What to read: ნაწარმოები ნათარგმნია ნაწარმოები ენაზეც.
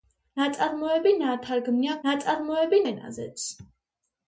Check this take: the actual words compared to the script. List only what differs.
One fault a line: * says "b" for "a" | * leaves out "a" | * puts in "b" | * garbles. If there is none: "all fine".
all fine